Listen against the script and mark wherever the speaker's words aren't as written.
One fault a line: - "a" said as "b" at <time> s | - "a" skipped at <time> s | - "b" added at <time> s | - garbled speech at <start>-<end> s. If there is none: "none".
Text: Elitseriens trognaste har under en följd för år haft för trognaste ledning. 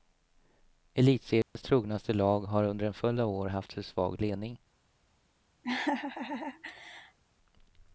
- "lag" added at 2.1 s
- "för" said as "av" at 3.2 s
- "trognaste" said as "svag" at 3.8 s